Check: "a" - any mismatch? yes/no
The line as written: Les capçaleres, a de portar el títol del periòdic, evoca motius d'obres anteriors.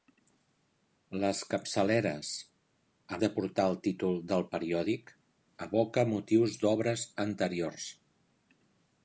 no